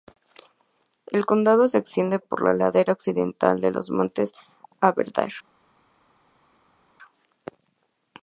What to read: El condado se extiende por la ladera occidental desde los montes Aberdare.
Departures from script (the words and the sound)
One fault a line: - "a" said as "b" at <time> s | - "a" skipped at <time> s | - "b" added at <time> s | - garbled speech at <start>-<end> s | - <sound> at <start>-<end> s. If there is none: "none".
- "desde" said as "de" at 3.6 s